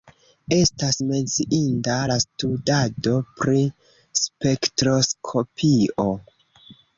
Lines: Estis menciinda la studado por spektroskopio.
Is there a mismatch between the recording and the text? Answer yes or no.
yes